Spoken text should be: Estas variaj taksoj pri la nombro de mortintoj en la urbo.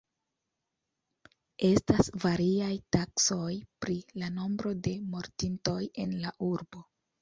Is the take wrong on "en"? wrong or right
right